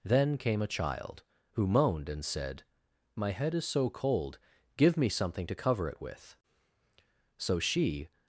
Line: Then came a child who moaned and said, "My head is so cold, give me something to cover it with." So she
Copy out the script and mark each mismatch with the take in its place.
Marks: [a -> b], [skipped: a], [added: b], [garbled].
Then came a child who moaned and said, "My head is so cold, give me something to cover it with." So she